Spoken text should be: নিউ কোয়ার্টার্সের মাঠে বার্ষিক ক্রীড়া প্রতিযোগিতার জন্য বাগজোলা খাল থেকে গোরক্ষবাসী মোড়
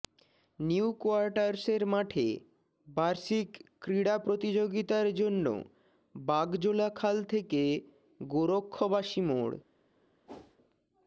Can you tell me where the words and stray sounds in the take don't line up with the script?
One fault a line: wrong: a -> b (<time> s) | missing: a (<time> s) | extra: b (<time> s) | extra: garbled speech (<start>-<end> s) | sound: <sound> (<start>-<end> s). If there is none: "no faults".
sound: whoosh (10.3-10.6 s)